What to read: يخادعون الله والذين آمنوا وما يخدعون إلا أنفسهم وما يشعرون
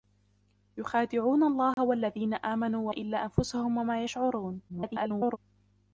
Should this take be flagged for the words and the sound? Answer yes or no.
yes